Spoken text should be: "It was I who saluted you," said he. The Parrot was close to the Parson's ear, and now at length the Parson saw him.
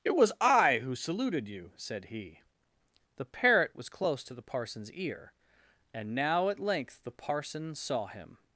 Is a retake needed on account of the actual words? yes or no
no